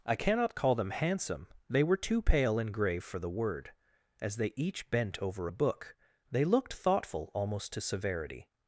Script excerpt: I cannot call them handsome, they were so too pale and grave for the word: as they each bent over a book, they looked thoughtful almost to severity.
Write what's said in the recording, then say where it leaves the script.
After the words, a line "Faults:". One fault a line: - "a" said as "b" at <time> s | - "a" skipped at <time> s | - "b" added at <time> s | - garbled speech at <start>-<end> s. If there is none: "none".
I cannot call them handsome, they were too pale and grave for the word: as they each bent over a book, they looked thoughtful almost to severity.
Faults:
- "so" skipped at 2.0 s